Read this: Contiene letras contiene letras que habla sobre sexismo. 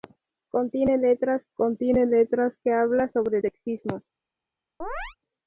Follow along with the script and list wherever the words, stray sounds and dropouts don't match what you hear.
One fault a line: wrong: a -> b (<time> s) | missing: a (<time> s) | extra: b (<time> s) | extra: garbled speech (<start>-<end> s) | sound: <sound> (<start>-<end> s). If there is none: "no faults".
sound: chirp (4.8-5.2 s)